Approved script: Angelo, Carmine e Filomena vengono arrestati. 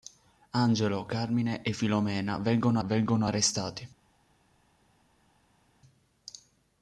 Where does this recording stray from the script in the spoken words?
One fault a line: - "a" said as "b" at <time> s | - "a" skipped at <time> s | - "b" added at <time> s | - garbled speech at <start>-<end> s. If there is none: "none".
- "vengono" added at 2.8 s